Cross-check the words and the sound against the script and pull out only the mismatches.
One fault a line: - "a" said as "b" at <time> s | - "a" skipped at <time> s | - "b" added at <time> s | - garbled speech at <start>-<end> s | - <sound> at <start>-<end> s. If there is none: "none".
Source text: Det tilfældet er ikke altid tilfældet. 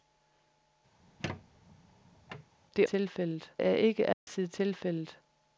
- squeak at 1.0-2.5 s
- dropout at 4.1-4.3 s